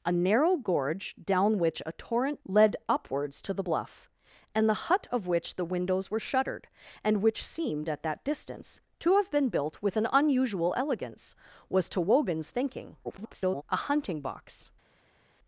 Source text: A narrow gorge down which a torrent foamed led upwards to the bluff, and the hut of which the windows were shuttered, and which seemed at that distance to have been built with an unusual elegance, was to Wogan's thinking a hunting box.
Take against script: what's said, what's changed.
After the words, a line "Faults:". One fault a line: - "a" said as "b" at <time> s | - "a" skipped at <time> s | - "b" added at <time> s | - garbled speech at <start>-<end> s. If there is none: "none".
A narrow gorge down which a torrent led upwards to the bluff, and the hut of which the windows were shuttered, and which seemed at that distance to have been built with an unusual elegance, was to Wogan's thinking [garbled] a hunting box.
Faults:
- "foamed" skipped at 2.4 s
- garbled speech at 13.0-13.6 s